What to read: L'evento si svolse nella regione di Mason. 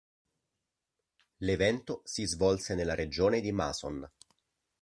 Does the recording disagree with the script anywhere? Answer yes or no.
no